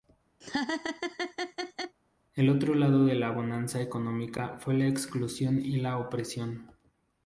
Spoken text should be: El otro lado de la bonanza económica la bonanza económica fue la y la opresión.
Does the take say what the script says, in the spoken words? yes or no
no